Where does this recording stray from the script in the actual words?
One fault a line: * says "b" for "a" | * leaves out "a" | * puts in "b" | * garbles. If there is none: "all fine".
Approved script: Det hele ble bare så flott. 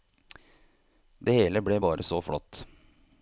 all fine